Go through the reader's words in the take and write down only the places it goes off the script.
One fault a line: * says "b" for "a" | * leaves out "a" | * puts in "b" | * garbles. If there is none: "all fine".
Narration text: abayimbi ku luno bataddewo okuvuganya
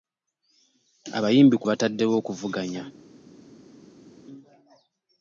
* leaves out "luno"